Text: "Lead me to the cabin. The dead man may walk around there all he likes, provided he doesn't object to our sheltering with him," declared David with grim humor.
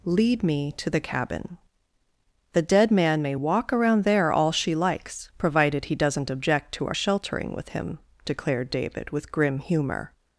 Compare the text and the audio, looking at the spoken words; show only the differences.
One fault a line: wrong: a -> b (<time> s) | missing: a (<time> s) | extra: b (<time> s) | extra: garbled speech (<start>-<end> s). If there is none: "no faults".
wrong: he -> she (4.5 s)